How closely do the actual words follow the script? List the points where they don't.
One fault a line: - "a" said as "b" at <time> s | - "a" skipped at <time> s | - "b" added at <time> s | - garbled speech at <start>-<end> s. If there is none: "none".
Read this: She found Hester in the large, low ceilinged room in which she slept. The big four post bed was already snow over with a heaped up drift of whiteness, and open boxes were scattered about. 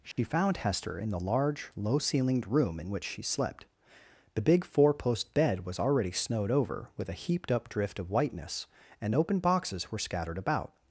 - "snow" said as "snowed" at 6.1 s